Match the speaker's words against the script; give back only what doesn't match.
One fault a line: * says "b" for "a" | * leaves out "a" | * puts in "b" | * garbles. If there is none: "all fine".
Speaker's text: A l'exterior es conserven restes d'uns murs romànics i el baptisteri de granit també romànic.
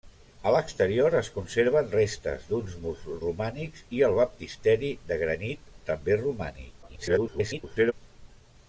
* garbles